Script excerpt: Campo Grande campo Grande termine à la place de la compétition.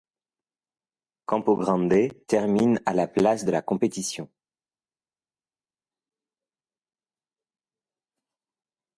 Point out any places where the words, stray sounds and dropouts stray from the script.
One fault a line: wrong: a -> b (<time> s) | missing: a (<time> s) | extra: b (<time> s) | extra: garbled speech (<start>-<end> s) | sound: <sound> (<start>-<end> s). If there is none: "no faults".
missing: campo Grande (2.2 s)